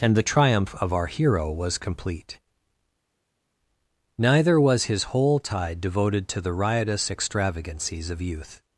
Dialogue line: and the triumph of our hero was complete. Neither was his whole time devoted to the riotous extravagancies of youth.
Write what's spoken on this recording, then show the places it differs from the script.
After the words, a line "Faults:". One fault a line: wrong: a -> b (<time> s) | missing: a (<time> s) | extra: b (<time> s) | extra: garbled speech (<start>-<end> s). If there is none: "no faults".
and the triumph of our hero was complete. Neither was his whole tide devoted to the riotous extravagancies of youth.
Faults:
wrong: time -> tide (5.4 s)